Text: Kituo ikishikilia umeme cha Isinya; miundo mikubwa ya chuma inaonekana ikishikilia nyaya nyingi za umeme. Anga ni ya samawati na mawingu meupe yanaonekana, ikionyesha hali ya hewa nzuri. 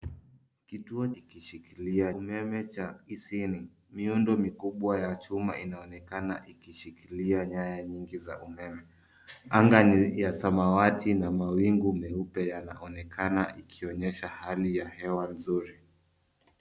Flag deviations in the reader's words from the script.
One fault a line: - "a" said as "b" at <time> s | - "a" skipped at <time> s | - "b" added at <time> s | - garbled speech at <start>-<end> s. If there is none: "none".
none